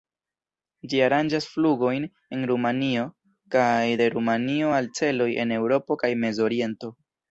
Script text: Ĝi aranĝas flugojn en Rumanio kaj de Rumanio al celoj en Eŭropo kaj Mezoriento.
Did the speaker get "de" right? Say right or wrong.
right